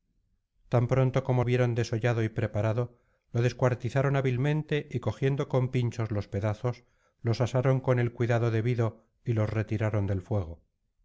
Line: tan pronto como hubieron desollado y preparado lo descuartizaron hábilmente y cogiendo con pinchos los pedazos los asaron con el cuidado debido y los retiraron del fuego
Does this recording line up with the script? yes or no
yes